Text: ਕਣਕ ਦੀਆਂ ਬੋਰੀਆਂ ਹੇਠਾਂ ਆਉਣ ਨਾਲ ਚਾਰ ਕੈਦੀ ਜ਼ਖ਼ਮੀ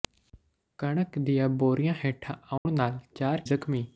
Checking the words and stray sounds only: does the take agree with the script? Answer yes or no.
no